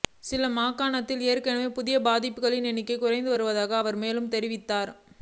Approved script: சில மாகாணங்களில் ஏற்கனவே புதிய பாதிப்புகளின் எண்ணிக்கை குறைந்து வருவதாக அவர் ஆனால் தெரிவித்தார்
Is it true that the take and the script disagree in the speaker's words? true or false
true